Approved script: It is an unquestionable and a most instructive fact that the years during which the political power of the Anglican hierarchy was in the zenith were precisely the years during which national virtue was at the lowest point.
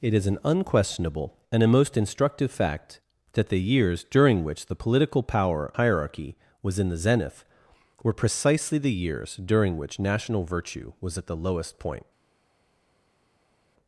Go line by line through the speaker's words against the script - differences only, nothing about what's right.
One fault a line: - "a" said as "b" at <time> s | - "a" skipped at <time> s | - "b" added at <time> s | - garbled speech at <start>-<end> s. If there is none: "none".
- "of the Anglican" skipped at 5.7 s